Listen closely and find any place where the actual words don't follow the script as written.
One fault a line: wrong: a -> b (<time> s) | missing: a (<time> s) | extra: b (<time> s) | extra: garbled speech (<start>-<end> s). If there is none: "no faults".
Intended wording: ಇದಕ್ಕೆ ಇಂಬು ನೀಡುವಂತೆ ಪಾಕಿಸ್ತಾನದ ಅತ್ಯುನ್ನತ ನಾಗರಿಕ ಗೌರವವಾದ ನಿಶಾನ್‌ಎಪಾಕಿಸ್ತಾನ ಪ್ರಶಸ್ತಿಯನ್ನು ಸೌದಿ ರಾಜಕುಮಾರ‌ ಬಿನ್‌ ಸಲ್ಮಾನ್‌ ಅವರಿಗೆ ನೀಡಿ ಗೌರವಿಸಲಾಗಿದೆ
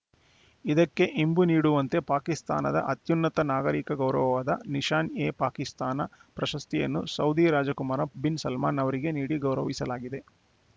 no faults